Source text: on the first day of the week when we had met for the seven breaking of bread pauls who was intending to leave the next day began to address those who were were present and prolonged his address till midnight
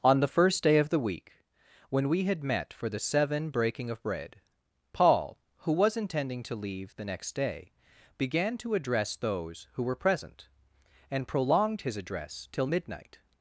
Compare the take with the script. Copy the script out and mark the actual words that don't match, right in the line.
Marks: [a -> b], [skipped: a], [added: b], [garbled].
on the first day of the week when we had met for the seven breaking of bread [pauls -> paul] who was intending to leave the next day began to address those who were [skipped: were] present and prolonged his address till midnight